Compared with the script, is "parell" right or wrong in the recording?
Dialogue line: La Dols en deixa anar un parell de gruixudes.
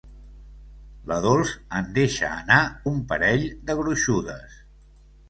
right